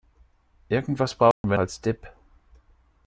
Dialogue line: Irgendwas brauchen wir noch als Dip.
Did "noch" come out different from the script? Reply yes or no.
yes